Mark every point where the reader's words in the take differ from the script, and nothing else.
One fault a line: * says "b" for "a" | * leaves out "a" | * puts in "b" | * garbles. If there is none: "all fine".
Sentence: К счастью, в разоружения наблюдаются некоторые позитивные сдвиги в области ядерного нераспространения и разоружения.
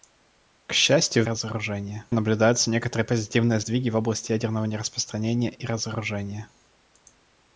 all fine